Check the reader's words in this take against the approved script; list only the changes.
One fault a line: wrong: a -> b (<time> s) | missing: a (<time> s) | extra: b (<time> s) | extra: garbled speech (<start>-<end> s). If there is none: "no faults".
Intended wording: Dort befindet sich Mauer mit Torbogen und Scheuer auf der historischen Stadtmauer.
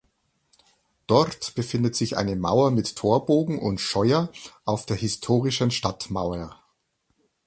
extra: eine (2.2 s)